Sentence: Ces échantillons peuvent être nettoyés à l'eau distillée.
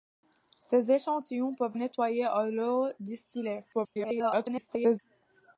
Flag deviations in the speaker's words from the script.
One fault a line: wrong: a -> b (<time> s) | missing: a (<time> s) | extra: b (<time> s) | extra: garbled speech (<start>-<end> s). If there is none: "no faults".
missing: être (1.8 s)
extra: garbled speech (3.7-5.0 s)